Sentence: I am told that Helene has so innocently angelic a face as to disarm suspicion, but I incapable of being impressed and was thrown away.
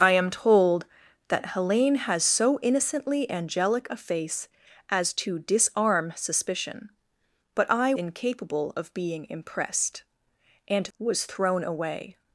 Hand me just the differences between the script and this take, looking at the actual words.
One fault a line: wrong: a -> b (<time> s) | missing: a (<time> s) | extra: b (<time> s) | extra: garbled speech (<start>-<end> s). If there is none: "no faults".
no faults